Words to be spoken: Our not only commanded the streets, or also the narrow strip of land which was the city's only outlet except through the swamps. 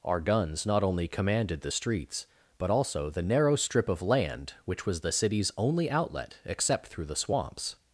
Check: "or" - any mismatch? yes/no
yes